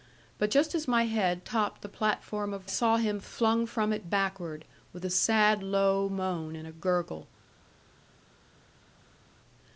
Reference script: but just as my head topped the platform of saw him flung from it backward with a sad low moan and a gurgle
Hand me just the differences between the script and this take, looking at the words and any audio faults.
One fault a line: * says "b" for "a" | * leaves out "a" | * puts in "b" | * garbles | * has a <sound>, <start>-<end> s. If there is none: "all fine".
all fine